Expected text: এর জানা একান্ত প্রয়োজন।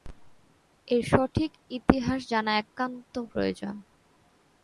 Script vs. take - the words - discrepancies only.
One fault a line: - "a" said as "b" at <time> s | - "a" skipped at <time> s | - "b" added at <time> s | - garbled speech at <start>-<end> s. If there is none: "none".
- "সঠিক ইতিহাস" added at 1.1 s